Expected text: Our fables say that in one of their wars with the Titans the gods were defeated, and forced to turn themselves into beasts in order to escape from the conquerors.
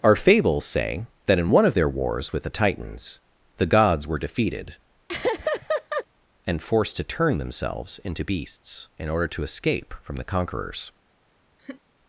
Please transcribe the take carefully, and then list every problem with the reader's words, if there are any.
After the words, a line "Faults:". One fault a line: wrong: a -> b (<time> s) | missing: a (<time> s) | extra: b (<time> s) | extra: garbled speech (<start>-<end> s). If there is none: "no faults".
Our fables say that in one of their wars with the Titans the gods were defeated, and forced to turn themselves into beasts in order to escape from the conquerors.
Faults:
no faults